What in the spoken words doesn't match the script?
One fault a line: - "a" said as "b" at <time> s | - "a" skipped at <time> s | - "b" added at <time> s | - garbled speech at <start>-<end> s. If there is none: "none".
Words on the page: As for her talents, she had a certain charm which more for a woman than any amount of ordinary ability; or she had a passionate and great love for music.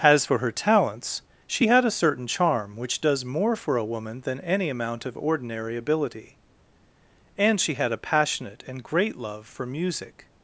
- "does" added at 3.0 s
- "or" said as "and" at 7.4 s